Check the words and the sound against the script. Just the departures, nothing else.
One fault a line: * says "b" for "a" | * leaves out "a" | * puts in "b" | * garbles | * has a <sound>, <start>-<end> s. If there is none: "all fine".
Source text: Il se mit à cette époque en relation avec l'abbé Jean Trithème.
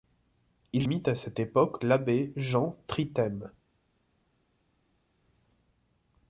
* leaves out "se"
* leaves out "en relation avec"